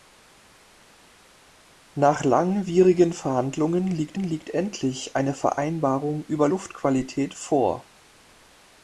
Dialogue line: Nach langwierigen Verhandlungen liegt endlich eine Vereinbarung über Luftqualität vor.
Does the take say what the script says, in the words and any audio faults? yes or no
no